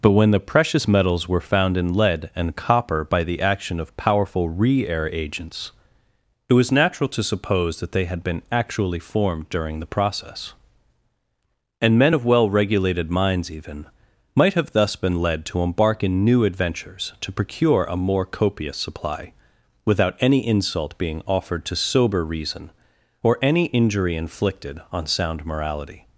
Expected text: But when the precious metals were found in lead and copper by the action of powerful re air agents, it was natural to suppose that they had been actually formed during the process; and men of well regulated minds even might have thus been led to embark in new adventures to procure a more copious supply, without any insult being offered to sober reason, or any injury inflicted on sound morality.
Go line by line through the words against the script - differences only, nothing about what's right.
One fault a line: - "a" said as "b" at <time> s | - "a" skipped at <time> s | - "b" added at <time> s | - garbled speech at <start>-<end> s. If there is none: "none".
none